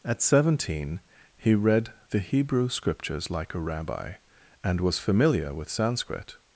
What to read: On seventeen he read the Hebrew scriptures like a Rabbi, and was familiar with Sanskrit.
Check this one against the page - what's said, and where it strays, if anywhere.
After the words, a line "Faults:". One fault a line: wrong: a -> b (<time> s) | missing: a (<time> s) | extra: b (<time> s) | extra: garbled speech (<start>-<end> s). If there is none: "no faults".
At seventeen he read the Hebrew scriptures like a Rabbi, and was familiar with Sanskrit.
Faults:
wrong: On -> At (0.0 s)